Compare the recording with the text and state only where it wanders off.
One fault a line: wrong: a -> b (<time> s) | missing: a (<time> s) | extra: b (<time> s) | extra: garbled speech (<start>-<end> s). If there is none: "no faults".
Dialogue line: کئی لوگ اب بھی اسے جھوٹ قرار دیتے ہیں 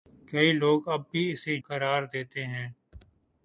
missing: جھوٹ (1.6 s)